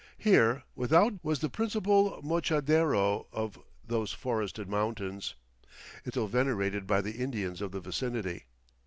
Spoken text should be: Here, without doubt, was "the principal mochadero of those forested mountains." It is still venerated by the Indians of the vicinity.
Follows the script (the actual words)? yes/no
no